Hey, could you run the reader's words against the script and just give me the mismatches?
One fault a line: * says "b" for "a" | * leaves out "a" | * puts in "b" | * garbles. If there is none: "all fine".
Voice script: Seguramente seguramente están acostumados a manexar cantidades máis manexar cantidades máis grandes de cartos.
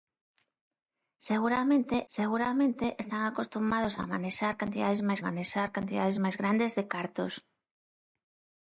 all fine